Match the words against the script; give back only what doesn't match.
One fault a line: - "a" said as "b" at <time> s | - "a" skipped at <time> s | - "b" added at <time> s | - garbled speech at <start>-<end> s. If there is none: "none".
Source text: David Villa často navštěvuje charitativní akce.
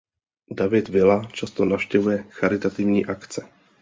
none